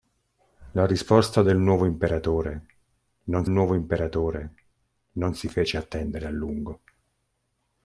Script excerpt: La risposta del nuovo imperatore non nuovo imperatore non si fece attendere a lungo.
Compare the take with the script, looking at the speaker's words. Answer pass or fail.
pass